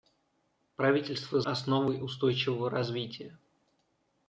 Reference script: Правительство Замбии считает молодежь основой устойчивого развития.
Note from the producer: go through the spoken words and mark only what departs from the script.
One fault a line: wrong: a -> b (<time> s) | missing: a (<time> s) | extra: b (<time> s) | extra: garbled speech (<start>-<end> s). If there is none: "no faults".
missing: Замбии считает молодежь (1.4 s)